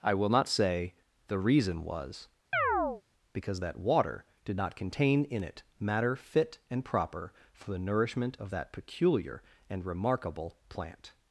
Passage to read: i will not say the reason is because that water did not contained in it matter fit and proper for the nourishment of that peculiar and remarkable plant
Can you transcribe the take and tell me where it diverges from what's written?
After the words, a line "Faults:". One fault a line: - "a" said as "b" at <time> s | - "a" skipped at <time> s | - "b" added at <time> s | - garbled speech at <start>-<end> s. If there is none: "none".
i will not say the reason was because that water did not contain in it matter fit and proper for the nourishment of that peculiar and remarkable plant
Faults:
- "is" said as "was" at 1.8 s
- "contained" said as "contain" at 4.8 s